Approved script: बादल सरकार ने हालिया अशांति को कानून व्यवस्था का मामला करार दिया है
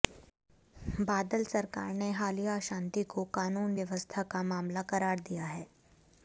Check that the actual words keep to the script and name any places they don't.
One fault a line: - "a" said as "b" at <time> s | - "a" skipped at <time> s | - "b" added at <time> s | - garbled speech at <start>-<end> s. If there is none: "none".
none